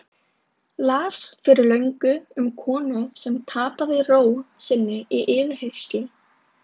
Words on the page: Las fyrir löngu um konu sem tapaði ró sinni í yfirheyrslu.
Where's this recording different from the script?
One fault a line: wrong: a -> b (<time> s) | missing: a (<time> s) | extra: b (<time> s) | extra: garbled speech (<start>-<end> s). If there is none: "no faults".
no faults